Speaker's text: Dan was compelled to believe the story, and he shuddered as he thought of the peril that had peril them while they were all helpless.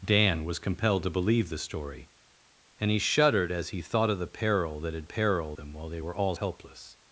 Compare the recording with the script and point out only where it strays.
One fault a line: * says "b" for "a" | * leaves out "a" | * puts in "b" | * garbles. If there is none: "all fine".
all fine